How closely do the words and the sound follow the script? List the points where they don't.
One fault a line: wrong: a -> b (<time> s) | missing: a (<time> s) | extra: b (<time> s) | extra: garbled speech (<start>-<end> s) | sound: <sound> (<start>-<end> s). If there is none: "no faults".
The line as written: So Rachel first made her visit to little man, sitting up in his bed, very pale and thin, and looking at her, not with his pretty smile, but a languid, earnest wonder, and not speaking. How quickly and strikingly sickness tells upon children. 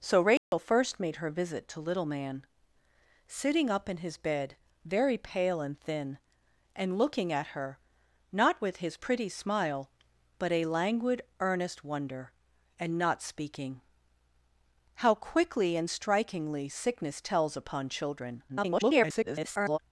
sound: dropout (0.4-0.5 s)
extra: garbled speech (18.5-19.8 s)